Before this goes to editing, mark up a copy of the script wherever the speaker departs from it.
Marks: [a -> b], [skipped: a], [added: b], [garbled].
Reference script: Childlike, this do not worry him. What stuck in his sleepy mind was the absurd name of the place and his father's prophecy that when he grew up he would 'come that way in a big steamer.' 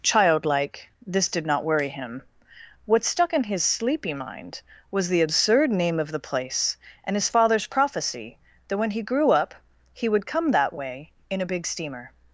Childlike, this [do -> did] not worry him. What stuck in his sleepy mind was the absurd name of the place and his father's prophecy that when he grew up he would 'come that way in a big steamer.'